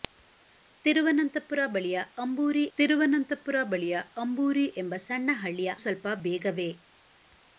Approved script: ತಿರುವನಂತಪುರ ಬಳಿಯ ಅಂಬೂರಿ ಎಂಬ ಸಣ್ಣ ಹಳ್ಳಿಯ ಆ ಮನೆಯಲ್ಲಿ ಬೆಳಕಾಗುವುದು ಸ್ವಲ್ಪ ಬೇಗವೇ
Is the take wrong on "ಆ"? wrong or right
wrong